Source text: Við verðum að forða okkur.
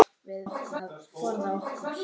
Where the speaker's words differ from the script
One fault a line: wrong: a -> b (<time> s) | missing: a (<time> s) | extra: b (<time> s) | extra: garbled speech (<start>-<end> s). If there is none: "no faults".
wrong: verðum -> okkur (0.5 s)